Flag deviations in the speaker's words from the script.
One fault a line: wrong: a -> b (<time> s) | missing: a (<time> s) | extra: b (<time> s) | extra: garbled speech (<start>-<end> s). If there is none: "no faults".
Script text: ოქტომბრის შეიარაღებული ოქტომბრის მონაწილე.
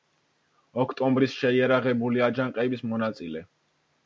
wrong: ოქტომბრის -> აჯანყების (2.3 s)